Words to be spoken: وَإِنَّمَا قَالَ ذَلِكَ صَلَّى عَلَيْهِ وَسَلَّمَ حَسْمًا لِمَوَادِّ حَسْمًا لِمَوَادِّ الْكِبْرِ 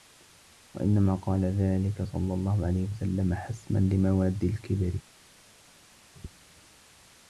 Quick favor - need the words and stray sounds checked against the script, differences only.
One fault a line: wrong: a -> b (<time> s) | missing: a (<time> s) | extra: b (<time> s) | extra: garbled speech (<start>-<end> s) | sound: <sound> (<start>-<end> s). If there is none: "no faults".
extra: اللَّهُ (2.3 s)
missing: حَسْمًا لِمَوَادِّ (4.4 s)